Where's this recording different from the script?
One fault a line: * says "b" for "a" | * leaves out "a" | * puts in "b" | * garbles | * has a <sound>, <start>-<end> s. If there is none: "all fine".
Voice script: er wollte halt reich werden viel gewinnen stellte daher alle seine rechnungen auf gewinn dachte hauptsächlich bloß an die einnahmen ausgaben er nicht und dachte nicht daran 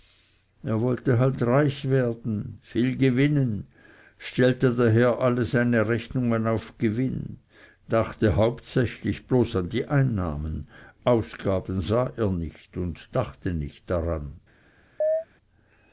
* puts in "sah"
* has a chirp, 15.0-15.3 s